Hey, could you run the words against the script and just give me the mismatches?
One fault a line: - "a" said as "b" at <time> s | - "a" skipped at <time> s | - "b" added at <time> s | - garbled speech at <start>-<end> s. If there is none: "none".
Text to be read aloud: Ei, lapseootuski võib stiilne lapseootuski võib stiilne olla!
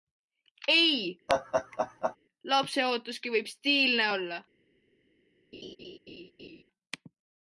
- "lapseootuski võib stiilne" skipped at 4.1 s